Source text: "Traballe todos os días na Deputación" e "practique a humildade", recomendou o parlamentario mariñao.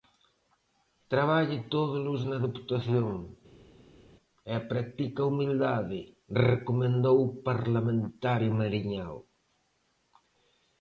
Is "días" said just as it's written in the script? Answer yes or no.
no